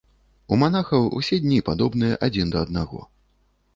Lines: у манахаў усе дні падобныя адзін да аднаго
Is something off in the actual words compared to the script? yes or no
no